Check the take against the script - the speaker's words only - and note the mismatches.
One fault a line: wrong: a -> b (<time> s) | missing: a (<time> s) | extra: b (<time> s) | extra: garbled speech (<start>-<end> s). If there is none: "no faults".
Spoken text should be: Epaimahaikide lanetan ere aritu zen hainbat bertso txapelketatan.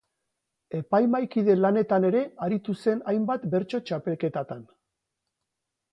no faults